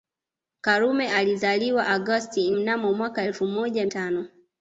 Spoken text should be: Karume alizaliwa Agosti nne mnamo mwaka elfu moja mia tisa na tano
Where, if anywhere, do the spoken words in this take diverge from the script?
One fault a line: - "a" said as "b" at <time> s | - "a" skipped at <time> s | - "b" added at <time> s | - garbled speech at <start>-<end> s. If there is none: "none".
- "nne" skipped at 2.5 s
- "mia tisa na" skipped at 3.9 s